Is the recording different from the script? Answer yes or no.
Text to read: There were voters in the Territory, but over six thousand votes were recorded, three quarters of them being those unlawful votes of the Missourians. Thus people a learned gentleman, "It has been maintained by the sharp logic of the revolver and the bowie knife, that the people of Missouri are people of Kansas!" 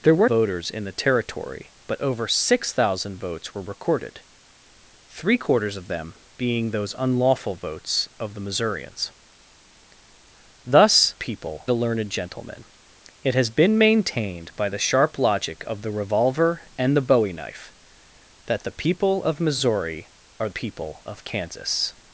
no